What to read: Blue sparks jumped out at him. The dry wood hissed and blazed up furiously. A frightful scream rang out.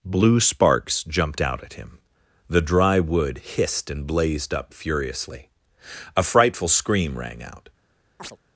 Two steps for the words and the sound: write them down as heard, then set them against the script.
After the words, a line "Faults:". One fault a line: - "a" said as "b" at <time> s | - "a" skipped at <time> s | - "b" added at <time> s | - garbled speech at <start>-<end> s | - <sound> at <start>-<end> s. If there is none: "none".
Blue sparks jumped out at him. The dry wood hissed and blazed up furiously. A frightful scream rang out.
Faults:
- chirp at 8.2-8.4 s